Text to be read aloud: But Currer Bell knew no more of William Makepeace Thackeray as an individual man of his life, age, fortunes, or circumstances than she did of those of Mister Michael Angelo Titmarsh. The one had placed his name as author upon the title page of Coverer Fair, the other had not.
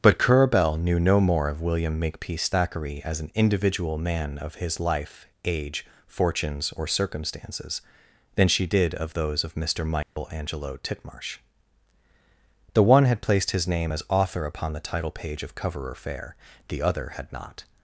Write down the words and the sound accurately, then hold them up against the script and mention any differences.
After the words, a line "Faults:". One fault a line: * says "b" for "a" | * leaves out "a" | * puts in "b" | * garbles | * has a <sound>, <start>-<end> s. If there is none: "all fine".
But Currer Bell knew no more of William Makepeace Thackeray as an individual man of his life, age, fortunes, or circumstances than she did of those of Mister Michael Angelo Titmarsh. The one had placed his name as author upon the title page of Coverer Fair, the other had not.
Faults:
* has a dropout, 10.0-10.2 s